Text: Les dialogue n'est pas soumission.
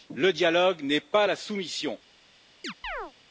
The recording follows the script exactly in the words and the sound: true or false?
false